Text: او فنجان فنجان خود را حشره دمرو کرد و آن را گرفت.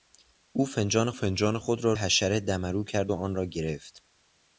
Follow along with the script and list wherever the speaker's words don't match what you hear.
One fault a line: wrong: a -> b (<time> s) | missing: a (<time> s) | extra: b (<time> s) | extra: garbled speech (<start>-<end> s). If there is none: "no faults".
no faults